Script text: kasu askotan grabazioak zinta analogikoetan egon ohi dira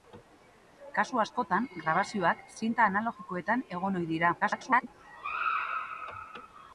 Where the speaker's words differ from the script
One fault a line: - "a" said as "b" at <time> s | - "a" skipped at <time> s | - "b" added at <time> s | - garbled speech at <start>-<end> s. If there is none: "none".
- garbled speech at 4.4-4.9 s